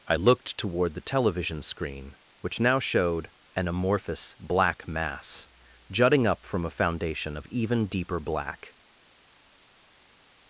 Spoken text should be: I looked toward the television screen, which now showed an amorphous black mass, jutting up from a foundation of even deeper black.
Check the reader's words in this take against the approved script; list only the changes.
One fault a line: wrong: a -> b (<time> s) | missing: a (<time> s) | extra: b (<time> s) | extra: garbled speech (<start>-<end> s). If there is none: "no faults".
no faults